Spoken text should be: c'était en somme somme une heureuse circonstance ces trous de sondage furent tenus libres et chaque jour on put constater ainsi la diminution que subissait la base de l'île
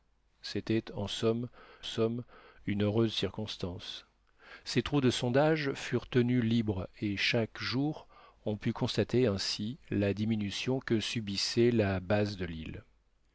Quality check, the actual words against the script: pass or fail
pass